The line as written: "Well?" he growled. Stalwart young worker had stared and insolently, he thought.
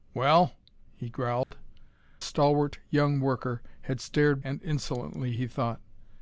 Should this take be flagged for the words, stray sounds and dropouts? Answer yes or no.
yes